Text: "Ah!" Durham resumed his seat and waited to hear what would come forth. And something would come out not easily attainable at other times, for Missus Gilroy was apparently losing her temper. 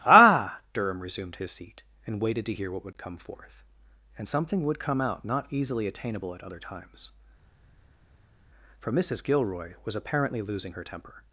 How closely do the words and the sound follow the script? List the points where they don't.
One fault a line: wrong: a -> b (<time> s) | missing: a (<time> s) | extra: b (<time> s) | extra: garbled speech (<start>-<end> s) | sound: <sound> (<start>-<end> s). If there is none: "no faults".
no faults